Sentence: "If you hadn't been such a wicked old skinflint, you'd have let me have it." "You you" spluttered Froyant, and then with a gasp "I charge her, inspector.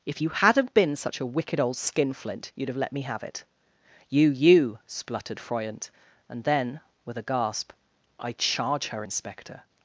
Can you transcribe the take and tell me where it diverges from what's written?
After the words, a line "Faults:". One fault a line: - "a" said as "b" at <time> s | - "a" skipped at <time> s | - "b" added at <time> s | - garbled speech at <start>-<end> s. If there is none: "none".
"If you hadn't been such a wicked old skinflint, you'd have let me have it." "You you" spluttered Froyant, and then with a gasp "I charge her, inspector.
Faults:
none